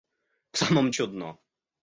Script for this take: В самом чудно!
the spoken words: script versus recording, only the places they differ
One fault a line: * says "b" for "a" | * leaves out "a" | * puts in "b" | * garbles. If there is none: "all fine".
all fine